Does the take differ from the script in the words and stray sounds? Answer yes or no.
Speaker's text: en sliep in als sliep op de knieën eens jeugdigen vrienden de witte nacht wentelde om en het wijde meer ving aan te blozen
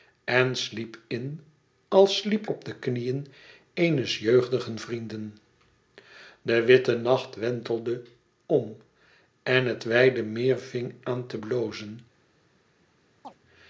yes